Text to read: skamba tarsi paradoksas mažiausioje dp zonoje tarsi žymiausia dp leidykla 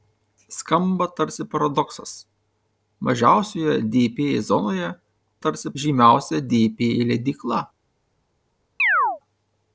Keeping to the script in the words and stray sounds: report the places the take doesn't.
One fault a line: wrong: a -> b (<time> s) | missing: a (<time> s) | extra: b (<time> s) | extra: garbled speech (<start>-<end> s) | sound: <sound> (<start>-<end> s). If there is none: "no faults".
sound: chirp (8.8-9.2 s)